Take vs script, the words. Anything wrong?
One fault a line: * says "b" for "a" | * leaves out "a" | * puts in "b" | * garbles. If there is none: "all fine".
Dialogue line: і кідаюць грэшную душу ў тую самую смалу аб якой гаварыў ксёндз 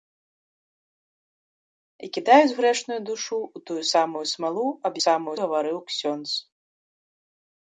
* says "самую" for "якой"